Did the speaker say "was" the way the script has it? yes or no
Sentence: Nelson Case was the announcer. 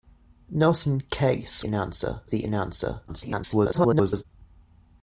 no